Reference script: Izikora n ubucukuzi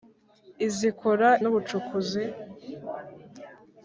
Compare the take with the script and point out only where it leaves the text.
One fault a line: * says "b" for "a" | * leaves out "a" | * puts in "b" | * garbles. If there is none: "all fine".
all fine